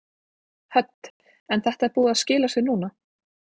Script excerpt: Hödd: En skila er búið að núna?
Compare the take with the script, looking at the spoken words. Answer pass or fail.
fail